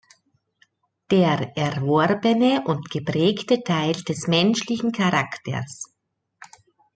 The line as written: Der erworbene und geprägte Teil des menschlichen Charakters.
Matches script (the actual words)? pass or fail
pass